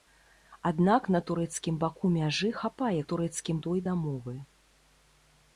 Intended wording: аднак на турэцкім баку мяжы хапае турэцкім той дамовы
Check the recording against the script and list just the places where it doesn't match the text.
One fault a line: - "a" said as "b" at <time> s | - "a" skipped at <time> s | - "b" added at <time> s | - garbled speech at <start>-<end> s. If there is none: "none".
none